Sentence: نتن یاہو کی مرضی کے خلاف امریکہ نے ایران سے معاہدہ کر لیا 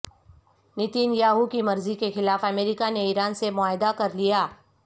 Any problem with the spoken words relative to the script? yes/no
no